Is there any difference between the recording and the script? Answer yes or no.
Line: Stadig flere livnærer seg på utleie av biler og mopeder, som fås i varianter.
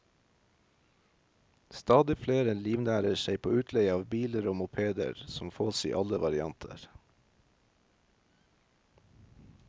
yes